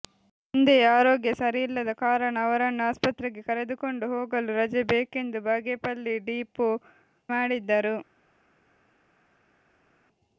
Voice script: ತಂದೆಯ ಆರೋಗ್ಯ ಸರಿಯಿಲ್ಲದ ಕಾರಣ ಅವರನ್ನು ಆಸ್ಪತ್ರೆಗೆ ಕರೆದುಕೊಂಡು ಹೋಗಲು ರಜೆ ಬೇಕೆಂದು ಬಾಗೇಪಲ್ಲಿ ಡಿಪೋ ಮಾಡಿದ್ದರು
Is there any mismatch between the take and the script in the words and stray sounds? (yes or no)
no